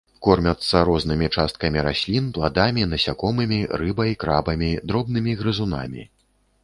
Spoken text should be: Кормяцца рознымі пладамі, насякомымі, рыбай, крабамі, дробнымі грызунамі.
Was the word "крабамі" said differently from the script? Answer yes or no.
no